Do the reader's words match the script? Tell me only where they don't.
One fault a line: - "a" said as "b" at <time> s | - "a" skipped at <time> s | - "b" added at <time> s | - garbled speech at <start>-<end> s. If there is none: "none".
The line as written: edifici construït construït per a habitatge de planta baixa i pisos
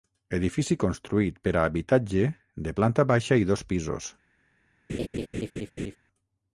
- "construït" skipped at 1.4 s
- "dos" added at 3.5 s